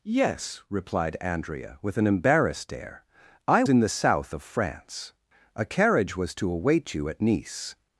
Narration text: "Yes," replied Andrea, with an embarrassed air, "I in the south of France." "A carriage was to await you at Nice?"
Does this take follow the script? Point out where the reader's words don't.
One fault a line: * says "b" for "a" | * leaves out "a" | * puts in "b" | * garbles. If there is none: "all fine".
all fine